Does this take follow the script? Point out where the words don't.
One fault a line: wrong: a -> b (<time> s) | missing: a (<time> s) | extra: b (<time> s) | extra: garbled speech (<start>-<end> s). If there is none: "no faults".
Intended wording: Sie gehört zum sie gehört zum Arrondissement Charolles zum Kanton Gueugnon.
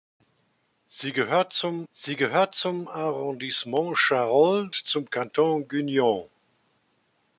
no faults